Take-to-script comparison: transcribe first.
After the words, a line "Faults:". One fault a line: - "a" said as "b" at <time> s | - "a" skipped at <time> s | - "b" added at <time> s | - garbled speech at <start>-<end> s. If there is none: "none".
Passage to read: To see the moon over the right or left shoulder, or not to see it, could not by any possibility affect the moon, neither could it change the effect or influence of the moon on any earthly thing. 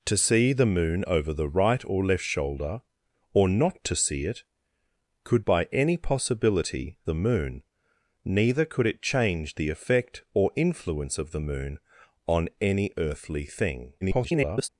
To see the moon over the right or left shoulder, or not to see it, could by any possibility the moon, neither could it change the effect or influence of the moon on any earthly thing. [garbled]
Faults:
- "not" skipped at 5.5 s
- "affect" skipped at 7.0 s
- garbled speech at 14.0-14.7 s